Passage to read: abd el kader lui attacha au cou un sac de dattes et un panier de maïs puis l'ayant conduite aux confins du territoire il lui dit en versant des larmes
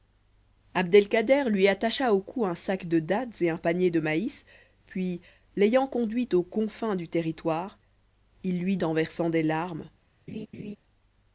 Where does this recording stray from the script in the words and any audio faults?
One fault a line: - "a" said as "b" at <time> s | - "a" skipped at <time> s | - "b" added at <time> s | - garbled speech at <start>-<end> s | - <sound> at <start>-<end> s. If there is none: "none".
- "dit" skipped at 8.8 s
- laugh at 10.3-10.8 s